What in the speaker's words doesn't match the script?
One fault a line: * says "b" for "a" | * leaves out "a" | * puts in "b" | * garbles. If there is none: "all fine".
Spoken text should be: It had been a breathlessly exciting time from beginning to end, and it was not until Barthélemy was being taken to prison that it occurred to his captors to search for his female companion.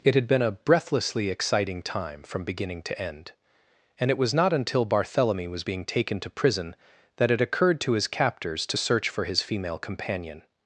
all fine